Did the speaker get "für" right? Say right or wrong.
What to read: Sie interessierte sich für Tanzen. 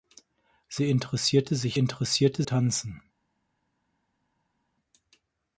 wrong